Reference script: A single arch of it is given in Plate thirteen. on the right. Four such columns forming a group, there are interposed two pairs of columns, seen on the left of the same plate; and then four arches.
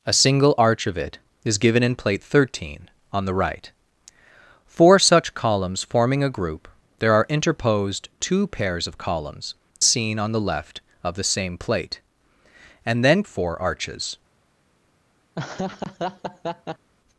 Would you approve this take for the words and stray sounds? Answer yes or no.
no